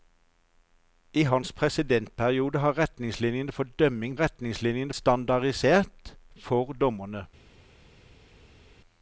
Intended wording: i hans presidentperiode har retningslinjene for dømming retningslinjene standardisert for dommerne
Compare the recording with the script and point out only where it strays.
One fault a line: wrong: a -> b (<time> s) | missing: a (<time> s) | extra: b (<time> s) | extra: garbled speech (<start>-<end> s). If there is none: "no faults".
no faults